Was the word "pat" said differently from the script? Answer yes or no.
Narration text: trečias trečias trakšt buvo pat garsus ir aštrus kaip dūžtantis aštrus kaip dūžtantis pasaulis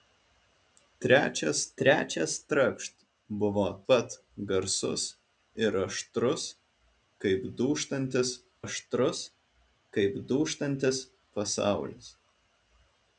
no